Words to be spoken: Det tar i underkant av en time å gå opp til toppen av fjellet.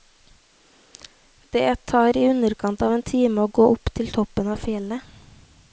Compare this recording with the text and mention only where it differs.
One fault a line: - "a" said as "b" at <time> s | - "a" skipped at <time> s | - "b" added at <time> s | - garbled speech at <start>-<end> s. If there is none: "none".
none